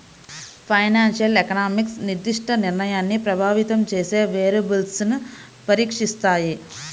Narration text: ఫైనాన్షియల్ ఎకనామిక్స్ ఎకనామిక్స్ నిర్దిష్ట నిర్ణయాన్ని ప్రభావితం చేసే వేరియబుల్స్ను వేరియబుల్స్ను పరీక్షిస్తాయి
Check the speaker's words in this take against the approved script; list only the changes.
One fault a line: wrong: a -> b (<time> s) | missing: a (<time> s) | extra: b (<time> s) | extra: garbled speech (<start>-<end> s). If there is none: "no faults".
missing: ఎకనామిక్స్ (2.0 s)
missing: వేరియబుల్స్ను (5.2 s)